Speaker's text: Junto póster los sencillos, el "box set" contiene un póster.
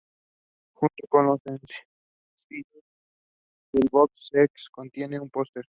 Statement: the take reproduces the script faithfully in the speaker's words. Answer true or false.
false